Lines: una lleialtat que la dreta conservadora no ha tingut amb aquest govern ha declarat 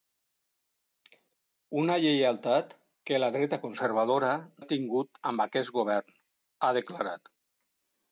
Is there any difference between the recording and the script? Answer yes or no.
yes